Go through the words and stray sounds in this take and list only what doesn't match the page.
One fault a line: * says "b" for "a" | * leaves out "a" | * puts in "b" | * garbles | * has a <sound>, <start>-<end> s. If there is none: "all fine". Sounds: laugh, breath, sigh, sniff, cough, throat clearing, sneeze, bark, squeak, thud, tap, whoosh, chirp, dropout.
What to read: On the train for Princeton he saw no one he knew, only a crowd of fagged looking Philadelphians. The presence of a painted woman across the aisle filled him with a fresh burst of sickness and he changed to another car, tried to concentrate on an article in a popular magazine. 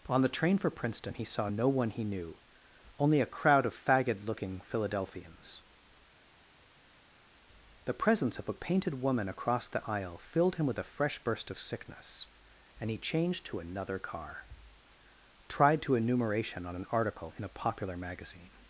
* says "enumeration" for "concentrate"